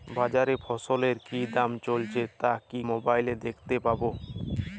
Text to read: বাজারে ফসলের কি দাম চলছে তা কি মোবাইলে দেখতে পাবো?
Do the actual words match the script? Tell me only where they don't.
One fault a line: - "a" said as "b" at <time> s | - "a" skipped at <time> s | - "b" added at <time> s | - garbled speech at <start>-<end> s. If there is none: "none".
none